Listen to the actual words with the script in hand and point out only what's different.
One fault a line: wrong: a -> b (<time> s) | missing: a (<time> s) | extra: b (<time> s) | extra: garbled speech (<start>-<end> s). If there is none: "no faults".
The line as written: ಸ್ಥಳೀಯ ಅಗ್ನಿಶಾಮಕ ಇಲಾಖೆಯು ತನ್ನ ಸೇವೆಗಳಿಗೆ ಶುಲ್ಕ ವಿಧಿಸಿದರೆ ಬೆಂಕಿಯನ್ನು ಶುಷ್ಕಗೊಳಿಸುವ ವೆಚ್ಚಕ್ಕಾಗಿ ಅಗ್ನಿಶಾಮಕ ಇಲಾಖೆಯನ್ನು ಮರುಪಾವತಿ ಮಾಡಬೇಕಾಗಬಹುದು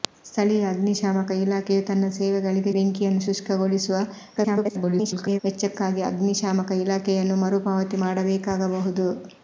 missing: ಶುಲ್ಕ ವಿಧಿಸಿದರೆ (2.7 s)
extra: garbled speech (4.4-5.4 s)